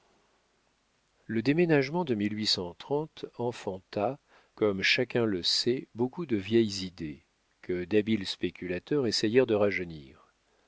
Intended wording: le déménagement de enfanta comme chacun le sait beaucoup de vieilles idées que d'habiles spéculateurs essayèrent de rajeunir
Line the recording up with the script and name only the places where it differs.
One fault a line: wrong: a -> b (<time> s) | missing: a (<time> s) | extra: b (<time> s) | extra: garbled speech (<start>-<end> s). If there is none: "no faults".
no faults